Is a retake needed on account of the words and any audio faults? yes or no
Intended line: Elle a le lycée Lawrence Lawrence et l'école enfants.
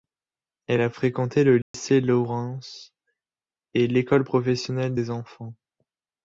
yes